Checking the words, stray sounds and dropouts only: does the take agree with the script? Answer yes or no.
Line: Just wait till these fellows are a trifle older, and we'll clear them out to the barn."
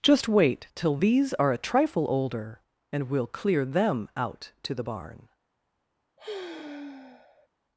no